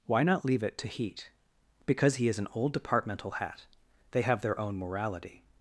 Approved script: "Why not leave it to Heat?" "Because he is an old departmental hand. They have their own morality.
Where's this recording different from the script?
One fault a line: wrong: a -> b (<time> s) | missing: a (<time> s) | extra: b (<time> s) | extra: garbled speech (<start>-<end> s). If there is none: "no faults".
wrong: hand -> hat (3.3 s)